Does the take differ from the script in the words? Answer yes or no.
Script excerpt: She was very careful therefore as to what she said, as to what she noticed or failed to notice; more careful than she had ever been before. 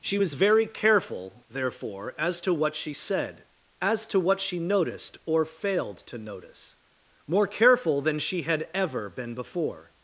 no